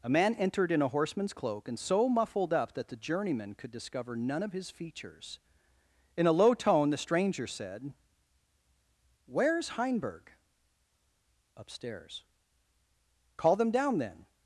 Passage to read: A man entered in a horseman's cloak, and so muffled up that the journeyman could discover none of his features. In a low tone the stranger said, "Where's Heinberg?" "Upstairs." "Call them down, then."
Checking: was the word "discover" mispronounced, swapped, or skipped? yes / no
no